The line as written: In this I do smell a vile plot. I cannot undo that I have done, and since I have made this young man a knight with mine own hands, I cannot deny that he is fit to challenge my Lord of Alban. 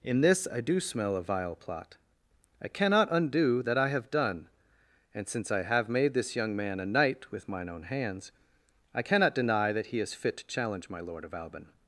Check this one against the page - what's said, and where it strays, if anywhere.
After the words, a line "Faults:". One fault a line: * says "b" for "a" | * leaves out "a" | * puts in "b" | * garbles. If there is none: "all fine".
In this I do smell a vile plot. I cannot undo that I have done, and since I have made this young man a knight with mine own hands, I cannot deny that he is fit to challenge my Lord of Alban.
Faults:
all fine